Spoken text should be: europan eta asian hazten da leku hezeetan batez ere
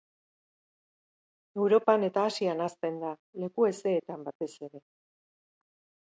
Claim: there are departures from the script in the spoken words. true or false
false